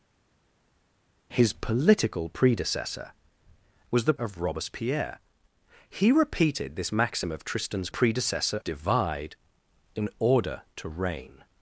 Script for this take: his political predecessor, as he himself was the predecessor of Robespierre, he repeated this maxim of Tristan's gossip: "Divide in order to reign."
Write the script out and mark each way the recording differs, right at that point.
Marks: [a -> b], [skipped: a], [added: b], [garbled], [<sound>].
his political predecessor, [skipped: as he himself] was the [skipped: predecessor] of Robespierre, he repeated this maxim of Tristan's [gossip: -> predecessor] "Divide in order to reign."